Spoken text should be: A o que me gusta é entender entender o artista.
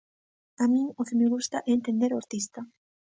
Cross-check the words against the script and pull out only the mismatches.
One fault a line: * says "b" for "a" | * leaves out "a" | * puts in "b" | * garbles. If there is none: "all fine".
* puts in "min"
* leaves out "entender"